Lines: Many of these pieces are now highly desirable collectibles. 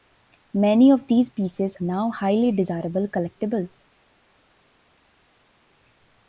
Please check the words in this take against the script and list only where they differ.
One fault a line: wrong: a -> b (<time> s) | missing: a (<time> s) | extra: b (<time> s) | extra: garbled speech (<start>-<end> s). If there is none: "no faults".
missing: are (1.8 s)